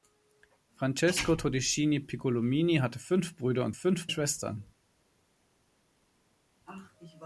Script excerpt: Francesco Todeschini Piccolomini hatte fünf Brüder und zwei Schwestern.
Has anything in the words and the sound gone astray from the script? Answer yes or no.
yes